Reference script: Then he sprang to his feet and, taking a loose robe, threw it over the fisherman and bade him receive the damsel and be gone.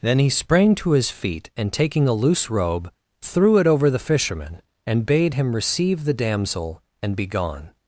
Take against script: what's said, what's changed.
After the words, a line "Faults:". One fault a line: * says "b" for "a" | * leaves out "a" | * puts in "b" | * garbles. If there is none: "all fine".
Then he sprang to his feet and, taking a loose robe, threw it over the fisherman and bade him receive the damsel and be gone.
Faults:
all fine